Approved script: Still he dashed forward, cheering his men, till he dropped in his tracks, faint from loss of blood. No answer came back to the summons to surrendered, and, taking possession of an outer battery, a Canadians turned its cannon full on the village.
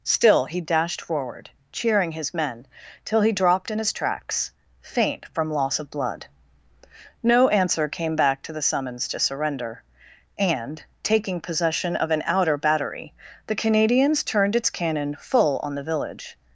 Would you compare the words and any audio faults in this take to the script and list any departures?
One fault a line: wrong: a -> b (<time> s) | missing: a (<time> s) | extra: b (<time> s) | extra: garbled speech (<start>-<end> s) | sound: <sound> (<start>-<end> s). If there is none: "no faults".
wrong: surrendered -> surrender (9.2 s)
wrong: a -> the (13.4 s)